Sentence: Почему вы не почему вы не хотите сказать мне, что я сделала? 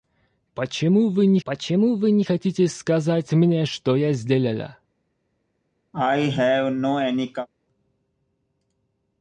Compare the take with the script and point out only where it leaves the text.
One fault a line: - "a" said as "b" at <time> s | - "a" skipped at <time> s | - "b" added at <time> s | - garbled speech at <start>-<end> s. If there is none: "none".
none